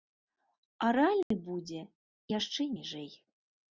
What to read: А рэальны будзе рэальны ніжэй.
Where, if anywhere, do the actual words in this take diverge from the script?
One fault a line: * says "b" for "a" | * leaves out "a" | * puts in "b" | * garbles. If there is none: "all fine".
* says "яшчэ" for "рэальны"